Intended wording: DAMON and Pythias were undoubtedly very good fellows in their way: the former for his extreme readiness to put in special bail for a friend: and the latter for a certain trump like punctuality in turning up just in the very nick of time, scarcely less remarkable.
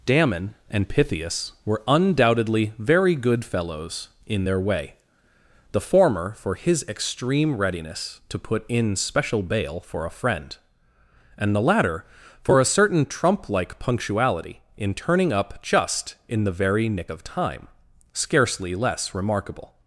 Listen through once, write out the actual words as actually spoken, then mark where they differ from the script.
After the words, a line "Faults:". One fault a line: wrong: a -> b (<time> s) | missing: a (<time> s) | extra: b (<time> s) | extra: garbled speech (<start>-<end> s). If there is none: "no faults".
DAMON and Pythias were undoubtedly very good fellows in their way: the former for his extreme readiness to put in special bail for a friend: and the latter for a certain trump like punctuality in turning up just in the very nick of time, scarcely less remarkable.
Faults:
no faults